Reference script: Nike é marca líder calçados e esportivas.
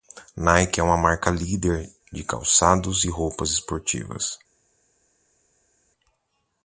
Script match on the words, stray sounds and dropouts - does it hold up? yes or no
no